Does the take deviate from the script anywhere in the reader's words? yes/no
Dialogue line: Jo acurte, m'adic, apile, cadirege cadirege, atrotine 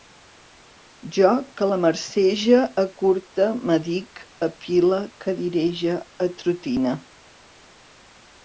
yes